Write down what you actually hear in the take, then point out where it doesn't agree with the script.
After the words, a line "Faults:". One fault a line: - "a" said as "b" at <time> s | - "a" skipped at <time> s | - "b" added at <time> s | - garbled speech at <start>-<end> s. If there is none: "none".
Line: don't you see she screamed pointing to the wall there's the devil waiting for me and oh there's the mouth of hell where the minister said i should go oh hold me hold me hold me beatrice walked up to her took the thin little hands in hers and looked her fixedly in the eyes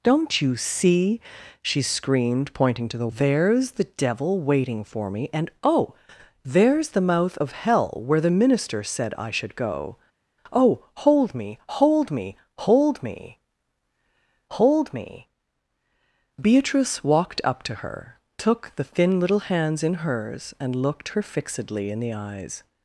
don't you see she screamed pointing to the there's the devil waiting for me and oh there's the mouth of hell where the minister said i should go oh hold me hold me hold me hold me beatrice walked up to her took the thin little hands in hers and looked her fixedly in the eyes
Faults:
- "wall" skipped at 3.1 s
- "hold me" added at 14.5 s